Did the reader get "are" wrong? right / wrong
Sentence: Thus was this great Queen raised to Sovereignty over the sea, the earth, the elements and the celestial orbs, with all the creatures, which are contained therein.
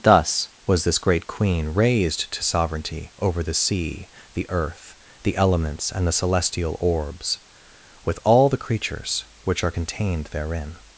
right